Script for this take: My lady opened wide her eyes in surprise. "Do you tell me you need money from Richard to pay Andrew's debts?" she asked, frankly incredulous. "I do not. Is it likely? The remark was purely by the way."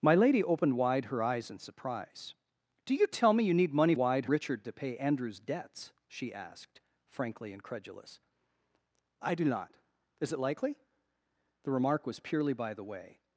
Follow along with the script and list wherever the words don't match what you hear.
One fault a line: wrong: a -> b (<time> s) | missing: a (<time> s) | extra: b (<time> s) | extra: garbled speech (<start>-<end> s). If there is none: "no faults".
wrong: from -> wide (4.0 s)